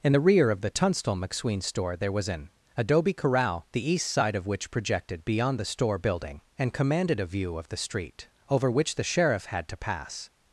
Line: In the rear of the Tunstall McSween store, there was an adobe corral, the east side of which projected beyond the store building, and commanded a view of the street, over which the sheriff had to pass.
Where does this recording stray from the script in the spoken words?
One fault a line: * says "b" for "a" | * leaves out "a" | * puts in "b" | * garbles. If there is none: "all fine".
all fine